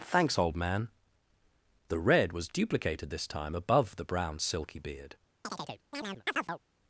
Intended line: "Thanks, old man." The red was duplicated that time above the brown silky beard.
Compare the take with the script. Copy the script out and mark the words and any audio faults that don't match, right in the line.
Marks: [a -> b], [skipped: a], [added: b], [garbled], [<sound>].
"Thanks, old man." The red was duplicated [that -> this] time above the brown silky beard. [chirp]